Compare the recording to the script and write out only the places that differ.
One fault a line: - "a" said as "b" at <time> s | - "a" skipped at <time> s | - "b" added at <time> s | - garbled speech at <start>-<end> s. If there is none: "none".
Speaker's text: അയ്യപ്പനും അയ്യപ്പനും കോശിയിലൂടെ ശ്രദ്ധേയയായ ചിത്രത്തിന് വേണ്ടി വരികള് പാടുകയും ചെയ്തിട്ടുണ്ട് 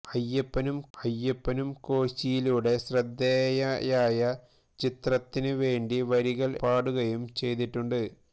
none